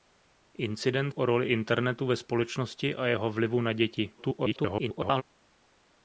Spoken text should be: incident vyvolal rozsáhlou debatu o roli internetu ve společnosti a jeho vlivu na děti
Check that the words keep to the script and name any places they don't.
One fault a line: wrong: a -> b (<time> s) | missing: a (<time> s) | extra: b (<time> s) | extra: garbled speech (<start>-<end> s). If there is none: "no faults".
missing: vyvolal rozsáhlou debatu (1.1 s)
extra: garbled speech (4.2-5.2 s)